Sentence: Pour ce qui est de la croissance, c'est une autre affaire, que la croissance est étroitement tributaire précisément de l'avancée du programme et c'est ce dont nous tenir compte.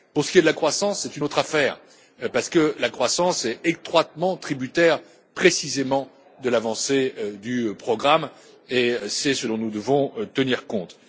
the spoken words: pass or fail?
fail